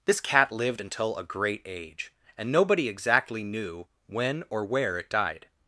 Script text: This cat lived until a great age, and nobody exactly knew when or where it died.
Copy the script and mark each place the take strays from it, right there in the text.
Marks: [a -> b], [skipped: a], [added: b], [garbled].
This cat lived until a great age, and nobody exactly knew when or where it died.